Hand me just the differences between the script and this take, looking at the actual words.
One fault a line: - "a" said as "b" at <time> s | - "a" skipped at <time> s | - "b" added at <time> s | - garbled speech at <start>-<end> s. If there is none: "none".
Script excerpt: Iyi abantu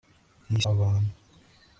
none